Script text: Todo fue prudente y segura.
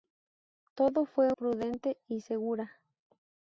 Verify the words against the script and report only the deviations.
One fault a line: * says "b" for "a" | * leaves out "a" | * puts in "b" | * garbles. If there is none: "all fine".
all fine